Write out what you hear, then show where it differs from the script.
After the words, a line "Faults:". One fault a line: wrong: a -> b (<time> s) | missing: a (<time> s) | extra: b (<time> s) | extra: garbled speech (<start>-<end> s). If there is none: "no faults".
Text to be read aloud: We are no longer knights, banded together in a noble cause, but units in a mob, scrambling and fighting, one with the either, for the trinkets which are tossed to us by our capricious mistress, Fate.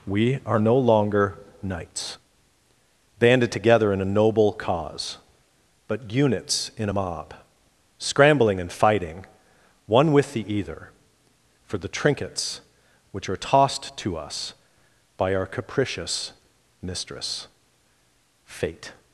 We are no longer knights, banded together in a noble cause, but units in a mob, scrambling and fighting, one with the either, for the trinkets which are tossed to us by our capricious mistress, Fate.
Faults:
no faults